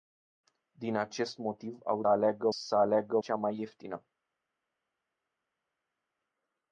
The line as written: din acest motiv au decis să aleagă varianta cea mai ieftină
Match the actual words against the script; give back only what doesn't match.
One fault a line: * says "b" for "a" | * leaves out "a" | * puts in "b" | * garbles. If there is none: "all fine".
* says "aleagă" for "decis"
* leaves out "varianta"